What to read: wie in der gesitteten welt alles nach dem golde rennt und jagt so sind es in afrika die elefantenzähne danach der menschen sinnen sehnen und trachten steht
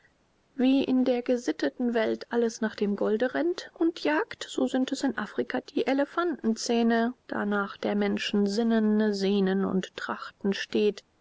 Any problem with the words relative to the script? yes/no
no